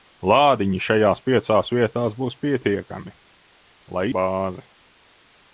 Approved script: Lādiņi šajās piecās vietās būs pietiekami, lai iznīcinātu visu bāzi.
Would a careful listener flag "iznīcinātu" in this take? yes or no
yes